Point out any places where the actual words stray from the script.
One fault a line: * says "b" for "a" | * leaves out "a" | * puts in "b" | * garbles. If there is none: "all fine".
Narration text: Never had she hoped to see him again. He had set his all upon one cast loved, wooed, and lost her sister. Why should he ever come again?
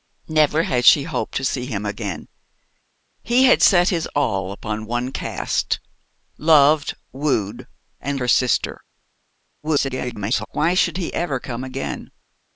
* leaves out "lost"
* garbles